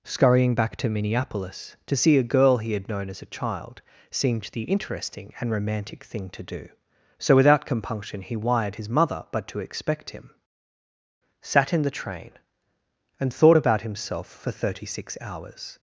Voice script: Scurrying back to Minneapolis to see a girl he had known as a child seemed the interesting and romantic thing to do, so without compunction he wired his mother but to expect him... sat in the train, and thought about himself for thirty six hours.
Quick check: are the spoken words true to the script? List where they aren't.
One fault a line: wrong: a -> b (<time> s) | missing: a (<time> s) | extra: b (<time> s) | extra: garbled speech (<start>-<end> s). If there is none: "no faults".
no faults